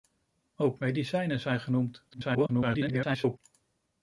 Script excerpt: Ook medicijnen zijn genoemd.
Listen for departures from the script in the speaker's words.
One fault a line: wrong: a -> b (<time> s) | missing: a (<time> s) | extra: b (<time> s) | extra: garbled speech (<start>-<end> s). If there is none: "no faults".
extra: garbled speech (2.1-3.4 s)